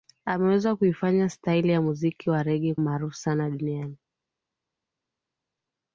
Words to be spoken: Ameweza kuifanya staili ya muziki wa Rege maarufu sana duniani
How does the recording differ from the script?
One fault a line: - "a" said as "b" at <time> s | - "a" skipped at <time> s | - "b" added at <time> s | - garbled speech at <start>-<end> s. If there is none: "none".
none